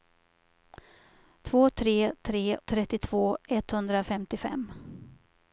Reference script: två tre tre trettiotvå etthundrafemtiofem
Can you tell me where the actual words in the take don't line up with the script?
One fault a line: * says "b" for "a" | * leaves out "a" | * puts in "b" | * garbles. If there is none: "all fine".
all fine